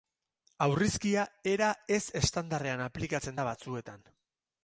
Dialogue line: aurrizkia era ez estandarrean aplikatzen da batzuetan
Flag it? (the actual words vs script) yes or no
no